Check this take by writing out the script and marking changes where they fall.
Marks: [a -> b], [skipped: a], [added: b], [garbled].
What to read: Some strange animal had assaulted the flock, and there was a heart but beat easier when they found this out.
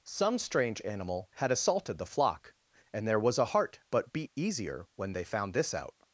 Some strange animal had assaulted the flock, and there was a heart but beat easier when they found this out.